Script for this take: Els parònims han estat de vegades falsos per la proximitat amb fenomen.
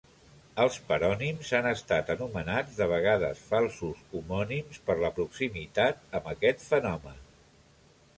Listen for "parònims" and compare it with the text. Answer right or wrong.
right